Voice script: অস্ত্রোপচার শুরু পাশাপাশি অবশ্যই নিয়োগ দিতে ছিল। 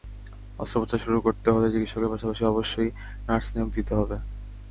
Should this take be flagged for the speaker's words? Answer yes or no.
yes